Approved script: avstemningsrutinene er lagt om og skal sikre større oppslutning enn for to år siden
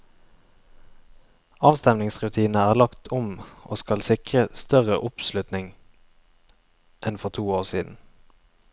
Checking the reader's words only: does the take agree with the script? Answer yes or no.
yes